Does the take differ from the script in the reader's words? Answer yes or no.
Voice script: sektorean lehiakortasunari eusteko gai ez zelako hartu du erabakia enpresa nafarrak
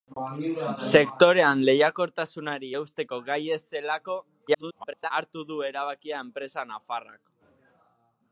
yes